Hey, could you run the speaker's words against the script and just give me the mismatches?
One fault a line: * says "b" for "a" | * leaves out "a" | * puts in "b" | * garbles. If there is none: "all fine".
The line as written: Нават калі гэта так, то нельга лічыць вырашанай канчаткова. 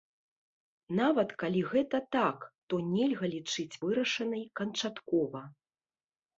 all fine